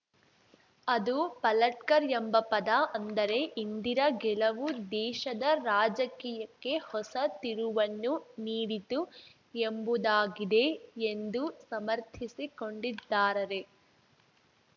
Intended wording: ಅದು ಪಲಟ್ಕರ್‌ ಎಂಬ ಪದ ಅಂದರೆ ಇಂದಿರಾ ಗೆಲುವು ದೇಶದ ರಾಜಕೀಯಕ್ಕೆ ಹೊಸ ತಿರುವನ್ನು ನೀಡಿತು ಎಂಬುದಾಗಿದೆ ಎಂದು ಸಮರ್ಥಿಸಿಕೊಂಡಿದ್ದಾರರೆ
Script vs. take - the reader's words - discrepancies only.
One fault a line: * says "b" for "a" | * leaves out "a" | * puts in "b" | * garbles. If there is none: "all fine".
all fine